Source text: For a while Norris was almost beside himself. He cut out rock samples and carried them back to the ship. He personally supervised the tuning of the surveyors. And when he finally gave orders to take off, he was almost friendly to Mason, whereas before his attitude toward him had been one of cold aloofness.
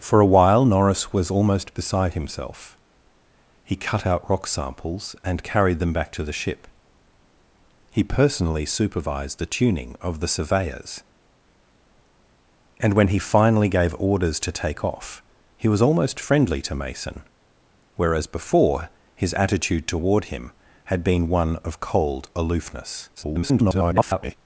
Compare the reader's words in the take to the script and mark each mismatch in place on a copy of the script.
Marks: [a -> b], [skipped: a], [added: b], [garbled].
For a while Norris was almost beside himself. He cut out rock samples and carried them back to the ship. He personally supervised the tuning of the surveyors. And when he finally gave orders to take off, he was almost friendly to Mason, whereas before his attitude toward him had been one of cold aloofness. [garbled]